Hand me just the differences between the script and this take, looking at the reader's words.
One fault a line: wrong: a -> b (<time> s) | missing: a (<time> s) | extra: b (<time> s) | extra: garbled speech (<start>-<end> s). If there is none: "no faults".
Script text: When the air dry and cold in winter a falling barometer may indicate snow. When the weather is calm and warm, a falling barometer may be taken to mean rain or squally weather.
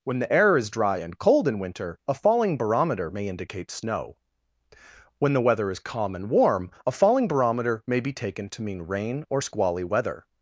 extra: is (0.6 s)